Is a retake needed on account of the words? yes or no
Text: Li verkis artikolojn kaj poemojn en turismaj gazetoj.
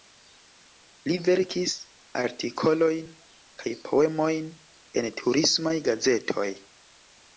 no